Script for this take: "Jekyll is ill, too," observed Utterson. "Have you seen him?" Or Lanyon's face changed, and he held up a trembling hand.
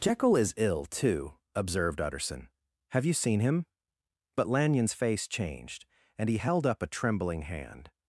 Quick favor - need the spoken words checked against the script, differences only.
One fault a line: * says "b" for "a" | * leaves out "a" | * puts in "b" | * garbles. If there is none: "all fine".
* says "But" for "Or"